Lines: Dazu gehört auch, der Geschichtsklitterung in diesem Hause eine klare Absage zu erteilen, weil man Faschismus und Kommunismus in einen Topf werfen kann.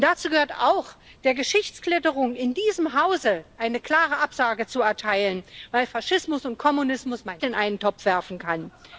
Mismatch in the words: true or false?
false